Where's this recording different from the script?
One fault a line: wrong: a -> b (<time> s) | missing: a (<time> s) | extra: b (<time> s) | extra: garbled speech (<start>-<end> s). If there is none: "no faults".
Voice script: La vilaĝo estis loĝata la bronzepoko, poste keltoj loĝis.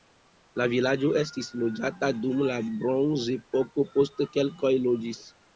extra: dum (2.2 s)